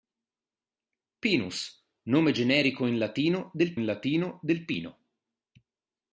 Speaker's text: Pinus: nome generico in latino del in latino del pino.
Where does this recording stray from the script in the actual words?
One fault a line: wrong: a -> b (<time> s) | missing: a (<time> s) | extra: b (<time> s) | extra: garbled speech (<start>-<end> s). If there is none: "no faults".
no faults